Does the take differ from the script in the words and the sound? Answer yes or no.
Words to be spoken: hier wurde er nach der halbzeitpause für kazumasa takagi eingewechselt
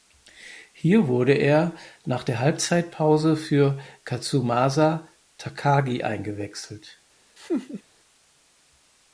yes